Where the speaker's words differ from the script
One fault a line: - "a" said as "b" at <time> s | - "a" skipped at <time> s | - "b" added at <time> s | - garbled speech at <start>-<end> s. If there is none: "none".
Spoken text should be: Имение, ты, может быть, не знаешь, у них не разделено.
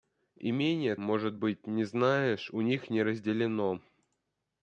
- "ты" skipped at 0.9 s